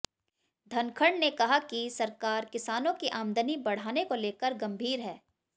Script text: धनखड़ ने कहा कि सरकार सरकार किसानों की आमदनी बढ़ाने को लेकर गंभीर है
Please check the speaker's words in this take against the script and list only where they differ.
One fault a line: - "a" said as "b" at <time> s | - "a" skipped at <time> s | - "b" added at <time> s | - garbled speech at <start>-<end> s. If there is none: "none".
- "सरकार" skipped at 2.5 s